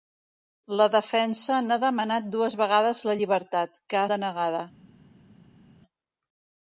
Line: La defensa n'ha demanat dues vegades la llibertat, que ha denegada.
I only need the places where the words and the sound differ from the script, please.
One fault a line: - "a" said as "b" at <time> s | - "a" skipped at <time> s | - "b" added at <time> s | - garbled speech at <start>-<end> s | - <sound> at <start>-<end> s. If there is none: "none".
none